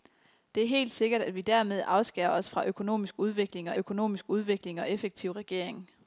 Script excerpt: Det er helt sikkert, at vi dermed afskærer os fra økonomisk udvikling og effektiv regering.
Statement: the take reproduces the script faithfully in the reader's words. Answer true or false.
false